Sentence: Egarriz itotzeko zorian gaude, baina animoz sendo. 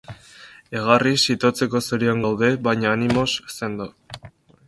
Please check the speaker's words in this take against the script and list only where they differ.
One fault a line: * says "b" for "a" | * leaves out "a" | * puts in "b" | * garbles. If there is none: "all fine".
all fine